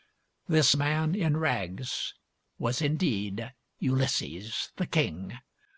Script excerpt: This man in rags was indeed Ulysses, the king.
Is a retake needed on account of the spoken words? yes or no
no